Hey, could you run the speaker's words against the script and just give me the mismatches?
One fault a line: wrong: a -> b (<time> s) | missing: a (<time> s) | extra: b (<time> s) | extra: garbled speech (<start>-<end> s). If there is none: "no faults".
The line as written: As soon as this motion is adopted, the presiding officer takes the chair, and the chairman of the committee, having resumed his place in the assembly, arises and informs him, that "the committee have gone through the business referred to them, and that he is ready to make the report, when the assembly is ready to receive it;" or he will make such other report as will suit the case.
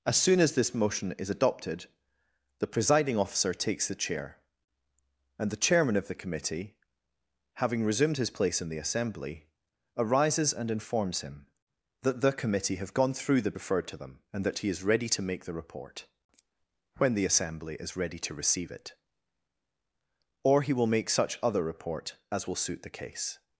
missing: business (13.5 s)